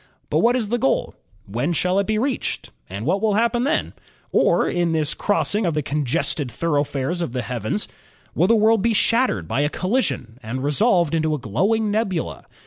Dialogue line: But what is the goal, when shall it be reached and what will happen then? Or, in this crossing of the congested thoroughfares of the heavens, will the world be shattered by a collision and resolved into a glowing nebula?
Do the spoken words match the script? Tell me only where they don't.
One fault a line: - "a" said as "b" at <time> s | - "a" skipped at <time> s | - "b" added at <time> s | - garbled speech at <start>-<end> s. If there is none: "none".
none